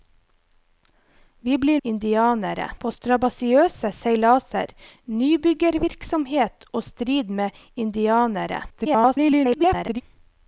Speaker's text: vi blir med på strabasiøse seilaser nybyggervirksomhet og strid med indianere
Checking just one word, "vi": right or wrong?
right